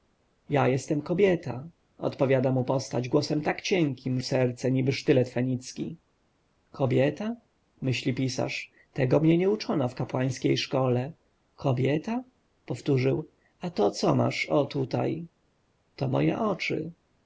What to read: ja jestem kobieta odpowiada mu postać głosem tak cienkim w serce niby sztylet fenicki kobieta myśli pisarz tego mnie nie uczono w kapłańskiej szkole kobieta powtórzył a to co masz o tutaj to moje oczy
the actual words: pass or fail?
pass